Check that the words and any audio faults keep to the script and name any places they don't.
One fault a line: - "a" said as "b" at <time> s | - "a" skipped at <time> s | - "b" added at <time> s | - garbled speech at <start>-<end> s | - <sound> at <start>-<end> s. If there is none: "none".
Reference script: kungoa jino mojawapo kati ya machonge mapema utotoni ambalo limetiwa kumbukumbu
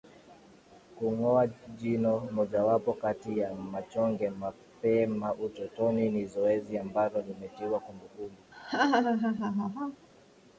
- "ni zoezi" added at 6.1 s
- laugh at 8.5-10.1 s